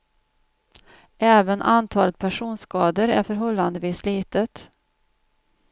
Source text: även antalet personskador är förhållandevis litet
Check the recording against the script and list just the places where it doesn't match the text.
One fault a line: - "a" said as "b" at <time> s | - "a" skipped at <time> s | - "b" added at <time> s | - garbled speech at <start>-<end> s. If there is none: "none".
none